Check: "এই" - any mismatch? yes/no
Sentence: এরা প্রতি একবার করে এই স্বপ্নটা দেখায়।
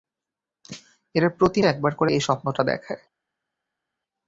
no